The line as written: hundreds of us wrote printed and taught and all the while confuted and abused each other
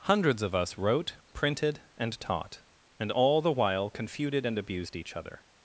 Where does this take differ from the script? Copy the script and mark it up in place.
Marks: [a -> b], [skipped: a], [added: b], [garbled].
hundreds of us wrote printed and taught and all the while confuted and abused each other